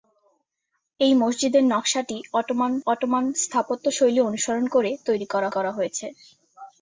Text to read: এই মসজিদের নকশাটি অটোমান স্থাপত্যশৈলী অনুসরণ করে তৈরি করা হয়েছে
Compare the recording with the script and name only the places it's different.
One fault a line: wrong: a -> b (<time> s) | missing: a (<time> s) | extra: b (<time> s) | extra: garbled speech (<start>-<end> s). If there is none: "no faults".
extra: অটোমান (2.9 s)
extra: করা (5.5 s)